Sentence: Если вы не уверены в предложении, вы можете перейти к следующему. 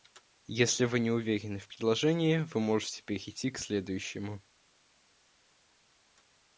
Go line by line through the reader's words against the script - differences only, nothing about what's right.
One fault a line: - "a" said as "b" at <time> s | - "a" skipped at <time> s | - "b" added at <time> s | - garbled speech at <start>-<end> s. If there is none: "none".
none